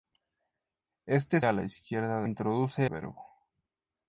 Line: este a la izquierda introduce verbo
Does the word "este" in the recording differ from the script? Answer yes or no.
no